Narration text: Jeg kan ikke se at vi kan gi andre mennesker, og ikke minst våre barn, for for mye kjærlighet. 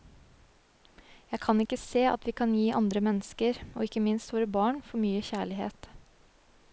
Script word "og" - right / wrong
right